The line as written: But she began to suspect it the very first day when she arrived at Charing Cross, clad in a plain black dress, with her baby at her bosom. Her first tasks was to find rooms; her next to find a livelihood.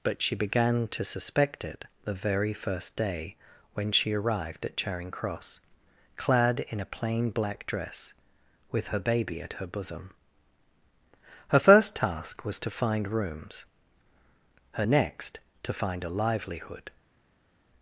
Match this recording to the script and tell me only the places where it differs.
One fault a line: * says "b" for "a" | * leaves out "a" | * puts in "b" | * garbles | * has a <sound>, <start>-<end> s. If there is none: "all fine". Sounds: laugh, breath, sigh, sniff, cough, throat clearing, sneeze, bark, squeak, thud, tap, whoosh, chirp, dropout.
* says "task" for "tasks"